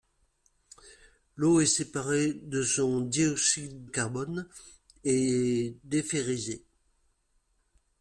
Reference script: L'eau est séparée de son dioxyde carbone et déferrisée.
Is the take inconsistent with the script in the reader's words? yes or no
no